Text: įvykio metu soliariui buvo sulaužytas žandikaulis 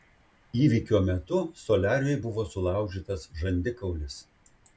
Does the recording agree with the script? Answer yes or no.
yes